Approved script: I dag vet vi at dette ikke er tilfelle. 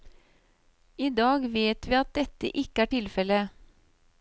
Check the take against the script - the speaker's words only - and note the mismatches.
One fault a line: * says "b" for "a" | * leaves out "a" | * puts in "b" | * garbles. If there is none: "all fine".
all fine